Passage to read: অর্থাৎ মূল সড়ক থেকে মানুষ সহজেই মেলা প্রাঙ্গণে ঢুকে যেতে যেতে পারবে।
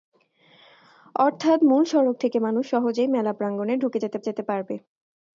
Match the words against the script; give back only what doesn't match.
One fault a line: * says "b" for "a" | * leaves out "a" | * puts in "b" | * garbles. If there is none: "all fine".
all fine